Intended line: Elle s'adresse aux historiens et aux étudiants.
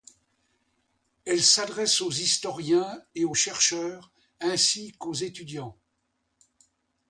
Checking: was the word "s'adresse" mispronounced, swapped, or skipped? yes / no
no